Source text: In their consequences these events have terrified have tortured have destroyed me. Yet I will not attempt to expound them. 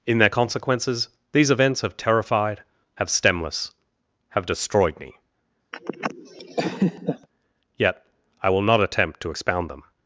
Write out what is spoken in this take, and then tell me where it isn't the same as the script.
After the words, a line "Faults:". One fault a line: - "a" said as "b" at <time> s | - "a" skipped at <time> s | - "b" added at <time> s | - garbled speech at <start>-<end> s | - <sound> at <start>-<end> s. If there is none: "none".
In their consequences these events have terrified have stemless have destroyed me. Yet I will not attempt to expound them.
Faults:
- "tortured" said as "stemless" at 3.1 s
- laugh at 5.7-7.3 s